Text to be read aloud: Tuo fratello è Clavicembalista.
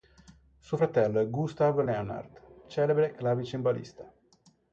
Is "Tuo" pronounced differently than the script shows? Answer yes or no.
yes